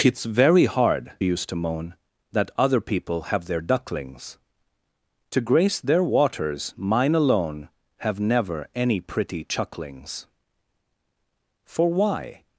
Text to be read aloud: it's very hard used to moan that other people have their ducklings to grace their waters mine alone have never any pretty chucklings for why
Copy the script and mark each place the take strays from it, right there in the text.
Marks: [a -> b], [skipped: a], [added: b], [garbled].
it's very hard used to moan that other people have their ducklings to grace their waters mine alone have never any pretty chucklings for why